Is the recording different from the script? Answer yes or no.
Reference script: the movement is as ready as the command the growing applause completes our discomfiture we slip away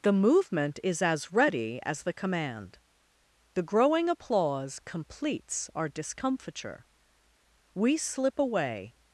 no